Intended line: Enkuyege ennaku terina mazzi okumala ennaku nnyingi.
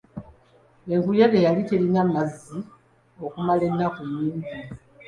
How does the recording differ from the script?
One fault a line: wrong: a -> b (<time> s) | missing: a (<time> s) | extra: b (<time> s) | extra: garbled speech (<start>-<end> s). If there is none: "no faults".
wrong: ennaku -> yali (1.4 s)